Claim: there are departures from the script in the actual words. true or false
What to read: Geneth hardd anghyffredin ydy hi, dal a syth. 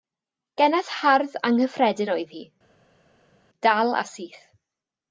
true